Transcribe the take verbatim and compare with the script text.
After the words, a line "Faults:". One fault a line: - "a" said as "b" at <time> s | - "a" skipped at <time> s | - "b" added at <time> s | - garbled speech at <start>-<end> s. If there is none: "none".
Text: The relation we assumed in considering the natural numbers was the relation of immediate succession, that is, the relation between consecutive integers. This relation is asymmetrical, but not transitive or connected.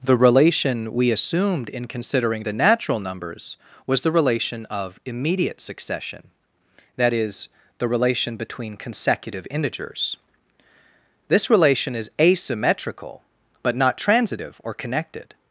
The relation we assumed in considering the natural numbers was the relation of immediate succession, that is, the relation between consecutive integers. This relation is asymmetrical, but not transitive or connected.
Faults:
none